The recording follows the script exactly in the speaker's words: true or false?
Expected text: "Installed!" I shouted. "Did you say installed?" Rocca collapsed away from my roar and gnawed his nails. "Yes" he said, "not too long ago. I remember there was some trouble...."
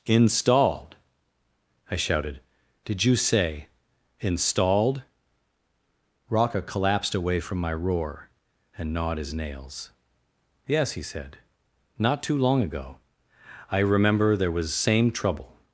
false